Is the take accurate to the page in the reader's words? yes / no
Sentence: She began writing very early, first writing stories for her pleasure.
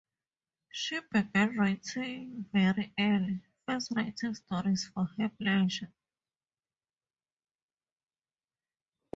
yes